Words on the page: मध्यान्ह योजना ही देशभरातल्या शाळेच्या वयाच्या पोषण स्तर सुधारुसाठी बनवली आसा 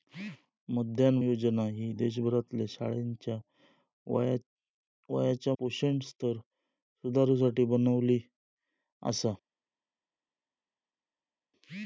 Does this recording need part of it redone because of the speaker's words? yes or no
no